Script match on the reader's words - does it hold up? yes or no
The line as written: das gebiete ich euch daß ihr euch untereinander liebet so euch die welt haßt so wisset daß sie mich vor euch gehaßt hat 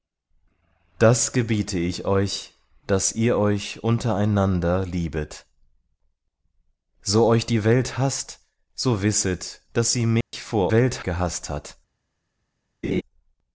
no